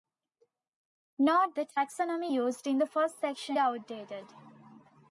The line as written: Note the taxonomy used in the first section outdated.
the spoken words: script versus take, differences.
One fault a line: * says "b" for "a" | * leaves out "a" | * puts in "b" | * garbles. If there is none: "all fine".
all fine